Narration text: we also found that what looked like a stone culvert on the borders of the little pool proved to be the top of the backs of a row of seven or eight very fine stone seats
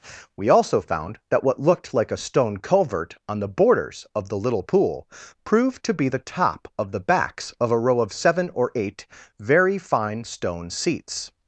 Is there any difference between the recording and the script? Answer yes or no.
no